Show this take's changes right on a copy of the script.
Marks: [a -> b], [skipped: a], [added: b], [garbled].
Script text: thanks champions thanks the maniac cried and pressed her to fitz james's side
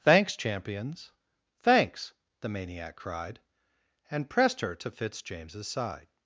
thanks champions thanks the maniac cried and pressed her to fitz james's side